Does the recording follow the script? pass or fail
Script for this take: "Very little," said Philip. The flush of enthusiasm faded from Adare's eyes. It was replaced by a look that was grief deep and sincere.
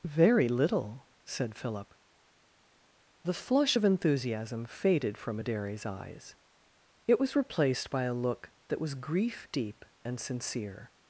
pass